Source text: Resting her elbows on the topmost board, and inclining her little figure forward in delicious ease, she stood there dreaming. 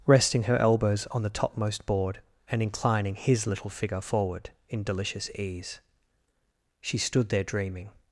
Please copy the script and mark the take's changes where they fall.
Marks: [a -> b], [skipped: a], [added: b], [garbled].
Resting her elbows on the topmost board, and inclining [her -> his] little figure forward in delicious ease, she stood there dreaming.